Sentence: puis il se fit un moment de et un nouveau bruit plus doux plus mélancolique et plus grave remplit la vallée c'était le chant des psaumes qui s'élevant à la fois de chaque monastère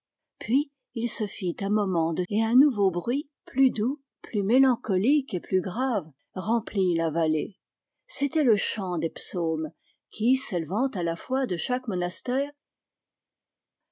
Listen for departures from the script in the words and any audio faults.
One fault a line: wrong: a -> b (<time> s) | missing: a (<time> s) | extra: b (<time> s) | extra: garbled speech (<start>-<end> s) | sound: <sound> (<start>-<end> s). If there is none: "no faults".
no faults